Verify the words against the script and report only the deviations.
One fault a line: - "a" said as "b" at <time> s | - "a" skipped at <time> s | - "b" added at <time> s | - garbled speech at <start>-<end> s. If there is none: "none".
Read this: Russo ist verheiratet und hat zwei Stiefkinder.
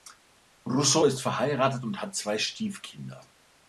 none